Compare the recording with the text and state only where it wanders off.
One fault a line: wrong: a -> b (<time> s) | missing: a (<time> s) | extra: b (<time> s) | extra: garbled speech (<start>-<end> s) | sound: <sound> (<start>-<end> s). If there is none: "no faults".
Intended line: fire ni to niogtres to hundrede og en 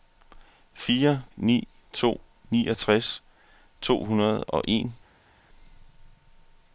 no faults